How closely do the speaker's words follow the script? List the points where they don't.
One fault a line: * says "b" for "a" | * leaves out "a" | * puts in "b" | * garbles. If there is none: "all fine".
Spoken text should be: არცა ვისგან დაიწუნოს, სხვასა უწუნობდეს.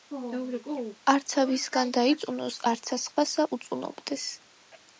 * puts in "არცა"